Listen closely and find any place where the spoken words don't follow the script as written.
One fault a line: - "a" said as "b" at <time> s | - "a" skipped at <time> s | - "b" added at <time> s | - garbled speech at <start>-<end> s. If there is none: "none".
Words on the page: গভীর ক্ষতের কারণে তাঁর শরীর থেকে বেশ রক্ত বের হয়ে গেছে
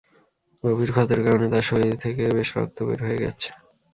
none